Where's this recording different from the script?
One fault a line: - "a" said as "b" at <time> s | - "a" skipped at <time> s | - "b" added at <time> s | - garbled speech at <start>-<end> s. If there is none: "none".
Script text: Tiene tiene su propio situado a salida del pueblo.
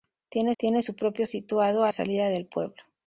none